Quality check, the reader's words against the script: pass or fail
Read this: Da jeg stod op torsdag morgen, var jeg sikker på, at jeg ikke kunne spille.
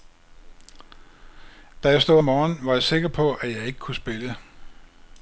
fail